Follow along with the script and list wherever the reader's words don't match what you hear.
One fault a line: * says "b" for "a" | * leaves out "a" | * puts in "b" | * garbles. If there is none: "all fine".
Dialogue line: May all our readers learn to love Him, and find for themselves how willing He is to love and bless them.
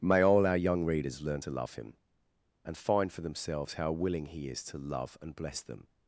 * puts in "young"